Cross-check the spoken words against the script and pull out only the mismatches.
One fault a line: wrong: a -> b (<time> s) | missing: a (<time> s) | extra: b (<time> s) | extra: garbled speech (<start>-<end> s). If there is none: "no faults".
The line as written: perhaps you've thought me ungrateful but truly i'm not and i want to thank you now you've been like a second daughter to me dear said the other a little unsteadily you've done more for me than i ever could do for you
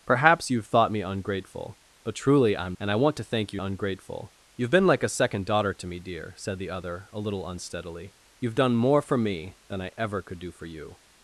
missing: not (2.8 s)
wrong: now -> ungrateful (3.6 s)